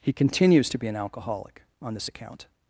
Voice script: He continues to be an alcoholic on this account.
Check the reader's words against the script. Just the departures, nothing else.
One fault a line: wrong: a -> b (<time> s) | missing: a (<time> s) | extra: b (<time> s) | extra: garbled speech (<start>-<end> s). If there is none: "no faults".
no faults